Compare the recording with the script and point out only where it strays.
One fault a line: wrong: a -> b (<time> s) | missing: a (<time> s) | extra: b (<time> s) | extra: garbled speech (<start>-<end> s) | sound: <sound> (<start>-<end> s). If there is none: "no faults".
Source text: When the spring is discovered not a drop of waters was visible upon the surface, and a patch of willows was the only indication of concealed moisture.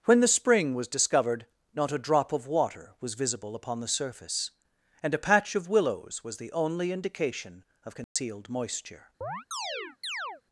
wrong: is -> was (0.7 s)
wrong: waters -> water (2.5 s)
sound: dropout (8.0-8.2 s)
sound: chirp (9.2-10.4 s)